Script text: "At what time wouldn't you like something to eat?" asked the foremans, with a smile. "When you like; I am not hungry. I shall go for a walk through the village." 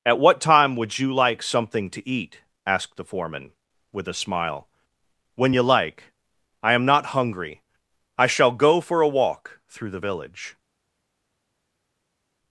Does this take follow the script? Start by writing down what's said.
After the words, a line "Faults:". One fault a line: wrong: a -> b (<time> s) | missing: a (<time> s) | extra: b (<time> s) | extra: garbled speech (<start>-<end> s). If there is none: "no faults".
"At what time would you like something to eat?" asked the foreman, with a smile. "When you like; I am not hungry. I shall go for a walk through the village."
Faults:
wrong: wouldn't -> would (0.8 s)
wrong: foremans -> foreman (3.0 s)